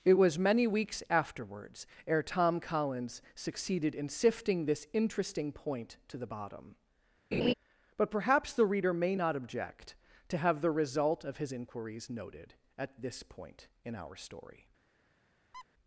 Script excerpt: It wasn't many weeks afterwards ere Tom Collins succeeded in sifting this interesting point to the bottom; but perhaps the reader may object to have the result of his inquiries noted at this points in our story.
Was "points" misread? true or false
true